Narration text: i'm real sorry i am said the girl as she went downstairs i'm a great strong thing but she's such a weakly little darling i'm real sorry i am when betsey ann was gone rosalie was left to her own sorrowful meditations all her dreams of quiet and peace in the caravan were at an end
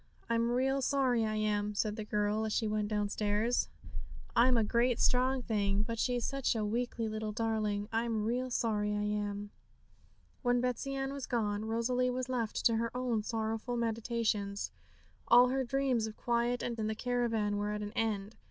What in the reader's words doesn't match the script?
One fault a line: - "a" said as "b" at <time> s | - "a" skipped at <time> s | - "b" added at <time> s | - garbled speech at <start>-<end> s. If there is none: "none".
- "peace" skipped at 16.8 s